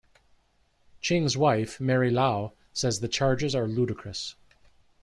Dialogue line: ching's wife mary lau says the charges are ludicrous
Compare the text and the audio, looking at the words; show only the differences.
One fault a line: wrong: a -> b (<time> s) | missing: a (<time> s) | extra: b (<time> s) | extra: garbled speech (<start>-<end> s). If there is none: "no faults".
no faults